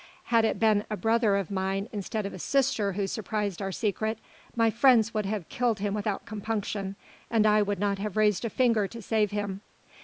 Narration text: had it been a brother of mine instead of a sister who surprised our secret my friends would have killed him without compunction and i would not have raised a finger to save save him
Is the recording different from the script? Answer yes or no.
yes